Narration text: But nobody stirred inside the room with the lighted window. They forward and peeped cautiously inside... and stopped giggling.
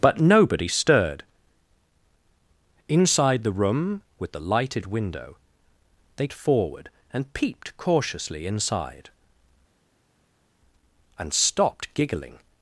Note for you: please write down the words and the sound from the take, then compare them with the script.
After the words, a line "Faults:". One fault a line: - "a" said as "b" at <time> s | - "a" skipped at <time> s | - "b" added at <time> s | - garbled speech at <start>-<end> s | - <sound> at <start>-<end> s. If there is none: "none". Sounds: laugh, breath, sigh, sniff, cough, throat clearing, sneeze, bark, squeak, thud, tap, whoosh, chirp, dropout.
But nobody stirred inside the room with the lighted window. They forward and peeped cautiously inside... and stopped giggling.
Faults:
none